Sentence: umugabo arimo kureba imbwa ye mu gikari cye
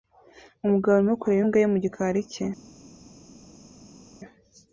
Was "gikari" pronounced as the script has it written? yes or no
yes